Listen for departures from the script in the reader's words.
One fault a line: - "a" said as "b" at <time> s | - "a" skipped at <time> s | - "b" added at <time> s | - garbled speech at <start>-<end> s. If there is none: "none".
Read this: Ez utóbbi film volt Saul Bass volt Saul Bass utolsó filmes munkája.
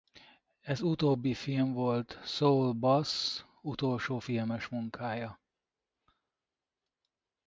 - "volt Saul Bass" skipped at 3.4 s